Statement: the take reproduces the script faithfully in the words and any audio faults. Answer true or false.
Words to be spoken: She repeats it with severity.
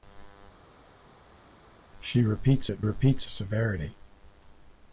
false